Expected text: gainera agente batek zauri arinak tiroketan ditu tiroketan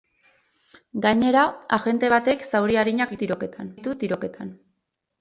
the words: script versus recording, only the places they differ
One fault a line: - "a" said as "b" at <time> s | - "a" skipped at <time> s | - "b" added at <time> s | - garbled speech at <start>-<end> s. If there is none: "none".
none